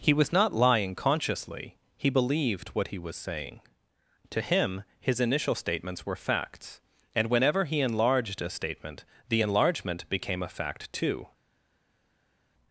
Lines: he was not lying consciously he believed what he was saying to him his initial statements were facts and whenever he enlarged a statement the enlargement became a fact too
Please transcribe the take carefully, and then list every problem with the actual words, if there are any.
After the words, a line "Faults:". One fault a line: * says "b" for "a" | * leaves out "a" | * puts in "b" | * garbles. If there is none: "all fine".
he was not lying consciously he believed what he was saying to him his initial statements were facts and whenever he enlarged a statement the enlargement became a fact too
Faults:
all fine